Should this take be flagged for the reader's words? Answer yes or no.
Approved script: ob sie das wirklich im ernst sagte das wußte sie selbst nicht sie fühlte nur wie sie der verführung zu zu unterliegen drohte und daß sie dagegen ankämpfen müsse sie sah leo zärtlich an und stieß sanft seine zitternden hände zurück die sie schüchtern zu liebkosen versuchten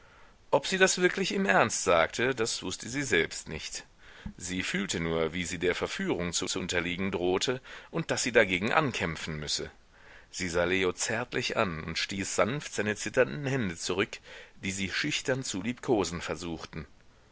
no